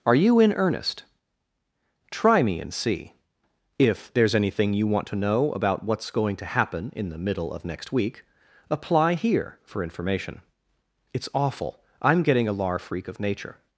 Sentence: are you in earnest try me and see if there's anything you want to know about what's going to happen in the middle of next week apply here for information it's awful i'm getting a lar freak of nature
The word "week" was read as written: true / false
true